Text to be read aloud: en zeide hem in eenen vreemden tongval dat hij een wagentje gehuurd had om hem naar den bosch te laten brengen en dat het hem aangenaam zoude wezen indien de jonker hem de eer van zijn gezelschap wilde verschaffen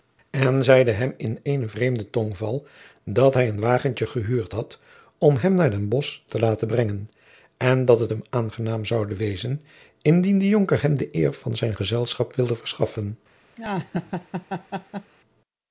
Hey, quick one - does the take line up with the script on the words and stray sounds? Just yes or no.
no